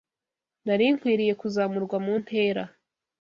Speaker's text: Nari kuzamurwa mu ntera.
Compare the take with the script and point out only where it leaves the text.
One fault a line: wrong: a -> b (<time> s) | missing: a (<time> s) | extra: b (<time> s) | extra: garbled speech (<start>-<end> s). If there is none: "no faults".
extra: nkwiriye (0.9 s)